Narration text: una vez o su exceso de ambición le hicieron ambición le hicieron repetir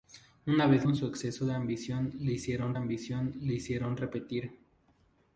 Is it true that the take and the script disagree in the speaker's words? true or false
false